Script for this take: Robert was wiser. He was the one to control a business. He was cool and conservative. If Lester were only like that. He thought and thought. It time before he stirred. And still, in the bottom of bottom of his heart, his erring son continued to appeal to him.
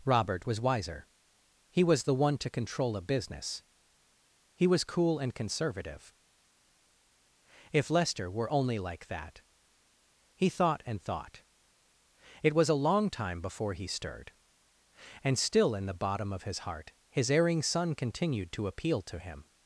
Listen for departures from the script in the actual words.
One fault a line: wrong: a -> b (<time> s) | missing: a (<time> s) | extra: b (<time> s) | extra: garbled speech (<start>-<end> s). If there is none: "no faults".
extra: was a long (12.5 s)
missing: bottom of (16.4 s)